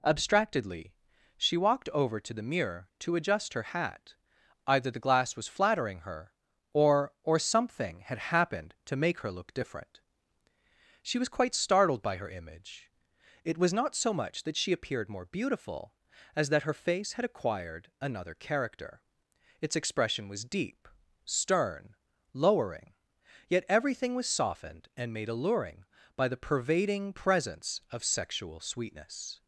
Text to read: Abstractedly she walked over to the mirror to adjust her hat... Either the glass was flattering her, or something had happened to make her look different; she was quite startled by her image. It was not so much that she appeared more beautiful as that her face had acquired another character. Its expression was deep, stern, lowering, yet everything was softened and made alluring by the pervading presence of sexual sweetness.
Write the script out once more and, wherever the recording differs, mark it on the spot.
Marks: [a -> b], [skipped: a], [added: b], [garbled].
Abstractedly she walked over to the mirror to adjust her hat... Either the glass was flattering her, or [added: or] something had happened to make her look different; she was quite startled by her image. It was not so much that she appeared more beautiful as that her face had acquired another character. Its expression was deep, stern, lowering, yet everything was softened and made alluring by the pervading presence of sexual sweetness.